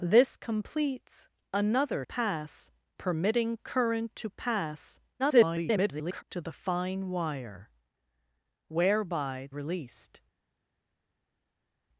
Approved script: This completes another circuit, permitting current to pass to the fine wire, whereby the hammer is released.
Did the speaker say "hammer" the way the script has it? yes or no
no